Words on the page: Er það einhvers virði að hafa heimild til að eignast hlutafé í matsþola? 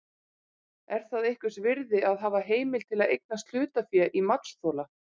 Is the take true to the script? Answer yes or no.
yes